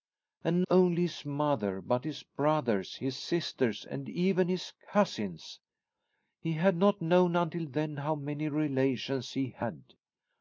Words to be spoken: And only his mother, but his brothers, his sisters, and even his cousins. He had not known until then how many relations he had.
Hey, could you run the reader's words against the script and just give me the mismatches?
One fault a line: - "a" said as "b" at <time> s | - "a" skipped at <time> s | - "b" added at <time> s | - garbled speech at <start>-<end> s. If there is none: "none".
none